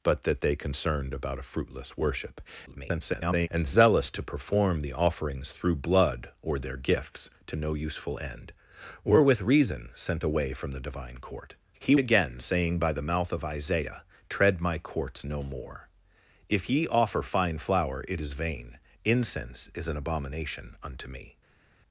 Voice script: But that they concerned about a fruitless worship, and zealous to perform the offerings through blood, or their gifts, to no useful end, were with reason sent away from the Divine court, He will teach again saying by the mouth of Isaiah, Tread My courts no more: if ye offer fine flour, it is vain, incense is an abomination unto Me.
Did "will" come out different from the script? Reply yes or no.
yes